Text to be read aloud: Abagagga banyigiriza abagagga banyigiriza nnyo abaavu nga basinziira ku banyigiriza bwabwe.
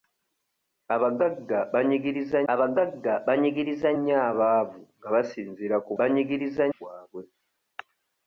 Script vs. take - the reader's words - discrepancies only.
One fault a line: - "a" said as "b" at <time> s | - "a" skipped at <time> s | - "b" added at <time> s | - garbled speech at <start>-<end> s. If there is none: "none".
none